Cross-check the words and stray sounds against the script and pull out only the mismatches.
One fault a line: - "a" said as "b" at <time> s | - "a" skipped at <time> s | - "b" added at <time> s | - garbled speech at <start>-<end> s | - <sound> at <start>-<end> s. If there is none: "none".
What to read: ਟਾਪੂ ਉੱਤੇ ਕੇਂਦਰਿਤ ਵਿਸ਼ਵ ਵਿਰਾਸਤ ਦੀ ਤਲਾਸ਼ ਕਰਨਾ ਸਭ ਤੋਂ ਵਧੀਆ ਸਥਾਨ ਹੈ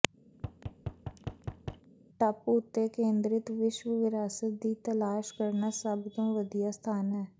- thud at 0.3-1.9 s